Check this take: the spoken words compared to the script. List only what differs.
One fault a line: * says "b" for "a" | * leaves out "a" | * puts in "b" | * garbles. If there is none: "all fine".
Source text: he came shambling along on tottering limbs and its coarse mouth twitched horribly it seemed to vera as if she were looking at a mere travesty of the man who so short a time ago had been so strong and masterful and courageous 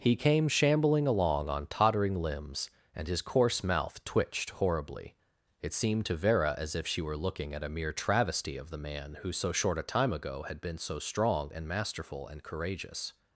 * says "his" for "its"